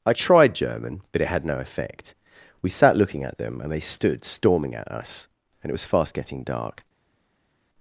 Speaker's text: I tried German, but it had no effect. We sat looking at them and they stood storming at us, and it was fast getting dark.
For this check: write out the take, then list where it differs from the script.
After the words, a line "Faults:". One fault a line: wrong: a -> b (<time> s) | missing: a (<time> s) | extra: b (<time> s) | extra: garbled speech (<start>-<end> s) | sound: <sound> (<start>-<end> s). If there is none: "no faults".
I tried German, but it had no effect. We sat looking at them and they stood storming at us, and it was fast getting dark.
Faults:
no faults